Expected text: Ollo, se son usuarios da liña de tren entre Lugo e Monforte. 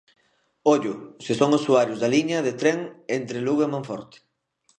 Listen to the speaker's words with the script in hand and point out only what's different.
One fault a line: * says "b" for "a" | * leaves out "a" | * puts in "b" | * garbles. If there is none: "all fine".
all fine